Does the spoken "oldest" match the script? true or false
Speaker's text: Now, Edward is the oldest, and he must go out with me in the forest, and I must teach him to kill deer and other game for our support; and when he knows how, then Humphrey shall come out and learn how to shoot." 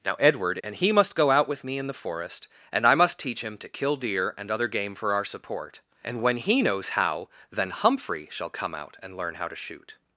false